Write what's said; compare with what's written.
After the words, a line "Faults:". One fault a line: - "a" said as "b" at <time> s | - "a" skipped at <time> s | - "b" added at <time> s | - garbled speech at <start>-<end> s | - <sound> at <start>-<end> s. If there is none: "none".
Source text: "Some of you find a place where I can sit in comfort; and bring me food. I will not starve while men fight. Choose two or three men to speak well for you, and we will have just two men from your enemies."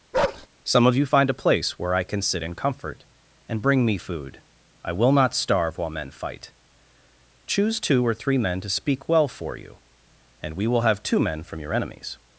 "Some of you find a place where I can sit in comfort; and bring me food. I will not starve while men fight. Choose two or three men to speak well for you, and we will have two men from your enemies."
Faults:
- bark at 0.1-0.5 s
- "just" skipped at 11.0 s